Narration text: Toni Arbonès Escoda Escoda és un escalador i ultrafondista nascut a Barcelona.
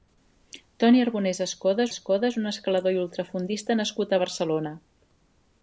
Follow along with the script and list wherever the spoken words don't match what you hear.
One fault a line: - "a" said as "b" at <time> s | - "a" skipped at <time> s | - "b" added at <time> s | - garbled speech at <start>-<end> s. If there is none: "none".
none